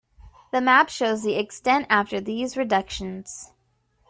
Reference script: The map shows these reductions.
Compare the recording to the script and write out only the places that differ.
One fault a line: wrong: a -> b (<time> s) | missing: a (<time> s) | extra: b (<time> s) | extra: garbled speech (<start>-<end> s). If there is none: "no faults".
extra: the extent after (1.2 s)